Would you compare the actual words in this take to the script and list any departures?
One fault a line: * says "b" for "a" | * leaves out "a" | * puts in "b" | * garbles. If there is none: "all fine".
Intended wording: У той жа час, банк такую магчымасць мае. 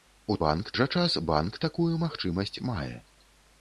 * says "банк" for "той"